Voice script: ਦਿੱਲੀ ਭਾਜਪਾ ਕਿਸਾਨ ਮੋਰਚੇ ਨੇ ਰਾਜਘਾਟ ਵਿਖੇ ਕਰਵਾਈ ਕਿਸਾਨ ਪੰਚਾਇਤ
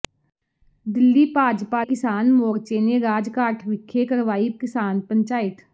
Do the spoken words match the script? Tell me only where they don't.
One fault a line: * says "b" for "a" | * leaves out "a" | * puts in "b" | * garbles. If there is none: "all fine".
all fine